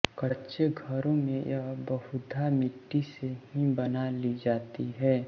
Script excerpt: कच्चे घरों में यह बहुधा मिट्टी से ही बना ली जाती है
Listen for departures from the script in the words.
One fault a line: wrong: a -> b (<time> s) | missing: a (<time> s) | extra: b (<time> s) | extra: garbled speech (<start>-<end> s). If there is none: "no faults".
no faults